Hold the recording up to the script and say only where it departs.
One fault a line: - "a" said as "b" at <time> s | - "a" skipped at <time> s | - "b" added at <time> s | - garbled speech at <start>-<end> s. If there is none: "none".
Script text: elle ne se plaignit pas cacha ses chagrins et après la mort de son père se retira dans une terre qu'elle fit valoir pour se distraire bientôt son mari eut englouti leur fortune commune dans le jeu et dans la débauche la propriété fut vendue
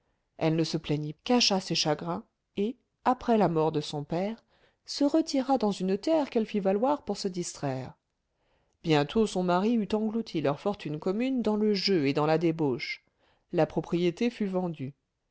- "pas" skipped at 1.1 s